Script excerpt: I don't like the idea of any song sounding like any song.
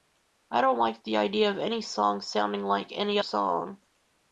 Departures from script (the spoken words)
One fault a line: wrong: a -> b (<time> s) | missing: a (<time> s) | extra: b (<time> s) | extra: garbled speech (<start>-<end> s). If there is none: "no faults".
no faults